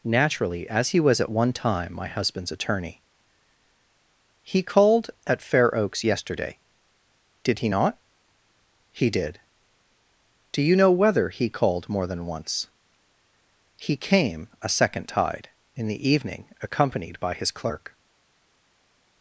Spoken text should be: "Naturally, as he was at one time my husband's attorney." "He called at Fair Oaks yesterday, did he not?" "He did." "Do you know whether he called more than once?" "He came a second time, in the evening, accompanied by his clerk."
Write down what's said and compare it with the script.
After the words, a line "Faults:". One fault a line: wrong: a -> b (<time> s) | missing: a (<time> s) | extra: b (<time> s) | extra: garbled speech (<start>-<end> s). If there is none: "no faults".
"Naturally, as he was at one time my husband's attorney." "He called at Fair Oaks yesterday, did he not?" "He did." "Do you know whether he called more than once?" "He came a second tide, in the evening, accompanied by his clerk."
Faults:
wrong: time -> tide (15.1 s)